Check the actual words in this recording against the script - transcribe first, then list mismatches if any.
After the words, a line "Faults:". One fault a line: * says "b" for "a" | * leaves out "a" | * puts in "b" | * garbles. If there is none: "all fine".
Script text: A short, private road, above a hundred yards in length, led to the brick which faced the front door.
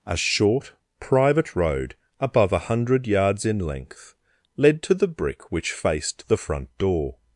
A short, private road, above a hundred yards in length, led to the brick which faced the front door.
Faults:
all fine